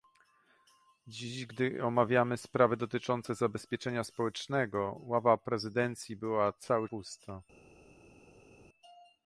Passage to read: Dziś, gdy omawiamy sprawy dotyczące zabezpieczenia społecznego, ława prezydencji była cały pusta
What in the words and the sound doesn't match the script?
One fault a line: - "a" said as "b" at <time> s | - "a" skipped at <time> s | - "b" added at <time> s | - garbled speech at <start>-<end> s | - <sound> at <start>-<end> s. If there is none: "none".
none